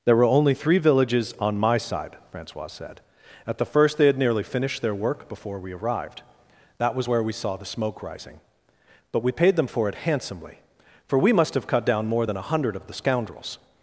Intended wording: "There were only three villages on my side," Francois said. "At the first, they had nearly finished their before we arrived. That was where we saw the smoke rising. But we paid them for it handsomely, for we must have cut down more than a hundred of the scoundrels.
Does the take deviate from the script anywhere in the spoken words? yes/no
yes